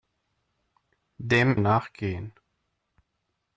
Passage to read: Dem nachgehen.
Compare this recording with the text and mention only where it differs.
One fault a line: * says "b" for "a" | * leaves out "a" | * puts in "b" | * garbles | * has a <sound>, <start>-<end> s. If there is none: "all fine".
all fine